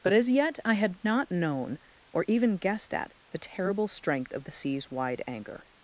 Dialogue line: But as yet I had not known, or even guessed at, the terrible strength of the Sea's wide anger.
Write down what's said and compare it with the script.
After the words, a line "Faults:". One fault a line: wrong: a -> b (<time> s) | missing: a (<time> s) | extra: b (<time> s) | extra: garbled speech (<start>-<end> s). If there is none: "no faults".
But as yet I had not known, or even guessed at, the terrible strength of the Sea's wide anger.
Faults:
no faults